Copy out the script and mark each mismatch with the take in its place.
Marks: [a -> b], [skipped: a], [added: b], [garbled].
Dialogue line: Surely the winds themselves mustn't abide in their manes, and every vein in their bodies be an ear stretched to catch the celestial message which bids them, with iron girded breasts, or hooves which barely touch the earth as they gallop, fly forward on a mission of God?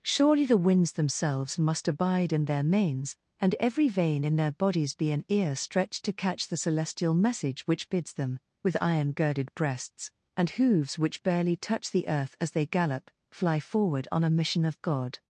Surely the winds themselves [mustn't -> must] abide in their manes, and every vein in their bodies be an ear stretched to catch the celestial message which bids them, with iron girded breasts, [or -> and] hooves which barely touch the earth as they gallop, fly forward on a mission of God?